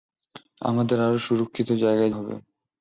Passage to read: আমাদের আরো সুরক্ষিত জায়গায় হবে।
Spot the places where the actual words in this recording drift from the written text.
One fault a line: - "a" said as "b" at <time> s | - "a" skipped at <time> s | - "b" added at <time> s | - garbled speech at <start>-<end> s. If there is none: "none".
none